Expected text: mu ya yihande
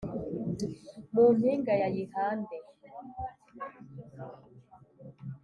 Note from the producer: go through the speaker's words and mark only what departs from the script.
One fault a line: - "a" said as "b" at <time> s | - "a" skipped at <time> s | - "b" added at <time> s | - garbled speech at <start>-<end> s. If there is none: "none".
- "mpinga" added at 1.4 s